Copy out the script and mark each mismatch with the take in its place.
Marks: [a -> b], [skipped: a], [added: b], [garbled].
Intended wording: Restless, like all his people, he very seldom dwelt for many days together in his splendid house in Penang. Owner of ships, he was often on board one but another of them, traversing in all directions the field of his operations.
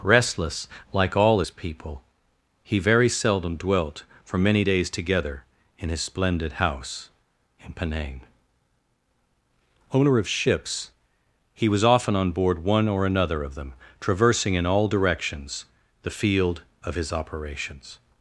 Restless, like all his people, he very seldom dwelt for many days together in his splendid house in Penang. Owner of ships, he was often on board one [but -> or] another of them, traversing in all directions the field of his operations.